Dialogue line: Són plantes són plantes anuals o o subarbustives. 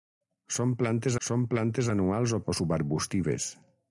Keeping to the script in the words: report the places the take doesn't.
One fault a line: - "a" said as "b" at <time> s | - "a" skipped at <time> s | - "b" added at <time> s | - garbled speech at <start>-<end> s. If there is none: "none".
none